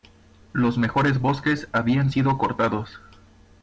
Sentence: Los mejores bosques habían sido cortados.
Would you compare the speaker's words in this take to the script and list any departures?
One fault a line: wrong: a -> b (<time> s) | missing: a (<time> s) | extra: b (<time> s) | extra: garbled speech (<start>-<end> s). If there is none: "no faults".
no faults